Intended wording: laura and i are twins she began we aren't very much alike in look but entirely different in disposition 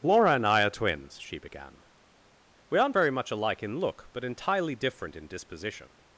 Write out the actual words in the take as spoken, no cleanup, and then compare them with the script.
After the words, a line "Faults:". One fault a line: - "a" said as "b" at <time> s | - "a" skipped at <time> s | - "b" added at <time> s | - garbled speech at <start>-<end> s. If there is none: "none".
laura and i are twins she began we aren't very much alike in look but entirely different in disposition
Faults:
none